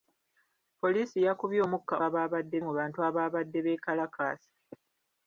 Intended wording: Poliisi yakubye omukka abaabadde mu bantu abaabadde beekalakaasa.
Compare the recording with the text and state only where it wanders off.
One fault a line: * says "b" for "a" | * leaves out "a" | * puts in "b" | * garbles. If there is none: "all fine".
all fine